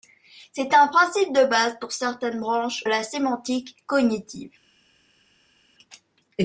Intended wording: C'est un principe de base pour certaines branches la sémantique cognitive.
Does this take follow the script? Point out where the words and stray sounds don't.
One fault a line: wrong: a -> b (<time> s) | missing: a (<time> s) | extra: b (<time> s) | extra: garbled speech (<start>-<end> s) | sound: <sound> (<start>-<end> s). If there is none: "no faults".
no faults